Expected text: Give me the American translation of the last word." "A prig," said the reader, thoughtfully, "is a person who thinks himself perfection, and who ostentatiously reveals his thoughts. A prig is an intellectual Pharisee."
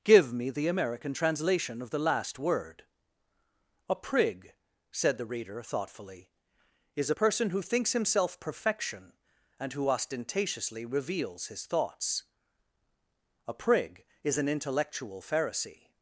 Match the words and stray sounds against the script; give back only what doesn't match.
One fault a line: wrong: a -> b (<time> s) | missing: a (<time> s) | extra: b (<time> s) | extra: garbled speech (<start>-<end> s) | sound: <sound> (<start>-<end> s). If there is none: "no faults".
no faults